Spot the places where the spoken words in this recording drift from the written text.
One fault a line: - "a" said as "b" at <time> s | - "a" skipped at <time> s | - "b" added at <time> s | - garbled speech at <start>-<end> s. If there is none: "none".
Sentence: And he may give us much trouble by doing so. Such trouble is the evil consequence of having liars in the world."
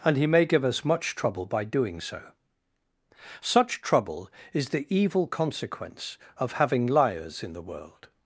none